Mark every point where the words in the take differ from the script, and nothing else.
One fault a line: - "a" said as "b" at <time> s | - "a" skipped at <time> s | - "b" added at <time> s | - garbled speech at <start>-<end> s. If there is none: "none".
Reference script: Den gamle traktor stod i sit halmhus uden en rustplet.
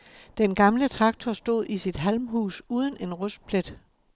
none